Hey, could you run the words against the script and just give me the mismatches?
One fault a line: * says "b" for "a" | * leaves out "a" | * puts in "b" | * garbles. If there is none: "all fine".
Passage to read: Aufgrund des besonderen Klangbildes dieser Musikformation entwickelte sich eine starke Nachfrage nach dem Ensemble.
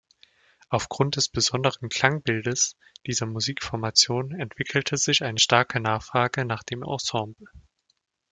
all fine